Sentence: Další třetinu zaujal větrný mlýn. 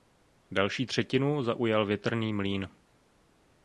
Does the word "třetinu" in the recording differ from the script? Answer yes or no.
no